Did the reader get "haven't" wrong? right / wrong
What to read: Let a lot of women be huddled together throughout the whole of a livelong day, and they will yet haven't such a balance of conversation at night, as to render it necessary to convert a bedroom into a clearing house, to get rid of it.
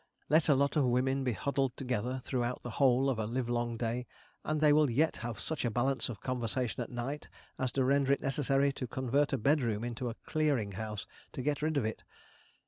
wrong